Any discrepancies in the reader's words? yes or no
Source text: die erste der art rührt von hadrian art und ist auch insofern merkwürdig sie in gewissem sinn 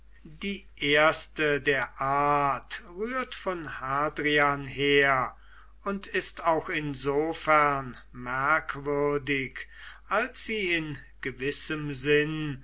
yes